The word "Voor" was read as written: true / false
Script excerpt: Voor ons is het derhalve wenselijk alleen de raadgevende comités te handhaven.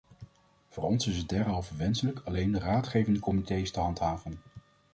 true